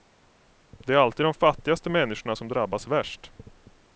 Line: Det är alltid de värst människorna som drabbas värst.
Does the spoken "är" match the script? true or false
true